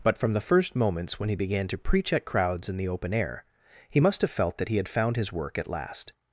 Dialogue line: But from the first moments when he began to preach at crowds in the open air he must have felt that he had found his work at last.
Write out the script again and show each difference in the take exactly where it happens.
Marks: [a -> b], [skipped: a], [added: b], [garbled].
But from the first moments when he began to preach at crowds in the open air he must have felt that he had found his work at last.